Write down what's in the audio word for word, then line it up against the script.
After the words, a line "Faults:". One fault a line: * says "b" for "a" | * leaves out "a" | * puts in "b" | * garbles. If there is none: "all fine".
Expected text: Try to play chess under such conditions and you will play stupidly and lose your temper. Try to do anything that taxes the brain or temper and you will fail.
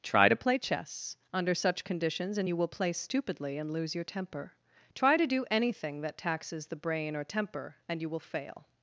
Try to play chess under such conditions and you will play stupidly and lose your temper. Try to do anything that taxes the brain or temper and you will fail.
Faults:
all fine